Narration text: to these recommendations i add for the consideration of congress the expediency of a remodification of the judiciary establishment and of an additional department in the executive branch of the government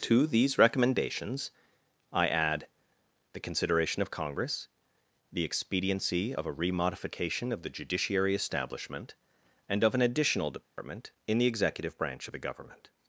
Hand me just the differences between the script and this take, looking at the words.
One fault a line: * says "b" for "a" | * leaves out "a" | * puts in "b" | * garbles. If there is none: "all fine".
* leaves out "for"